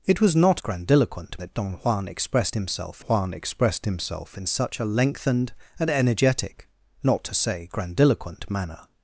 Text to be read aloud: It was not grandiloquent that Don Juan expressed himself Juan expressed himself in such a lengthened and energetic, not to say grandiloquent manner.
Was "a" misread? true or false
false